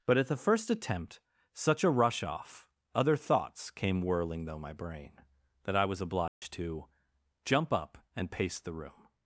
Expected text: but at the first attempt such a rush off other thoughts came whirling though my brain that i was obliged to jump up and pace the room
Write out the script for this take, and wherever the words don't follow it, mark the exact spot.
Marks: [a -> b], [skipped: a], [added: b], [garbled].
but at the first attempt such a rush off other thoughts came whirling though my brain that i was obliged to jump up and pace the room